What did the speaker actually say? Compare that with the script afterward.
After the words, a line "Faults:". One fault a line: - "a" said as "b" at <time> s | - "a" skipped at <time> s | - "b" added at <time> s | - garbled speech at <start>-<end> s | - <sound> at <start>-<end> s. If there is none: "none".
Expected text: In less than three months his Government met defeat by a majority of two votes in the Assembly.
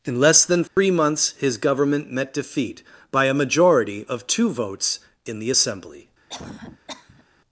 In less than three months his Government met defeat by a majority of two votes in the Assembly.
Faults:
- dropout at 0.7-0.8 s
- cough at 6.3-7.2 s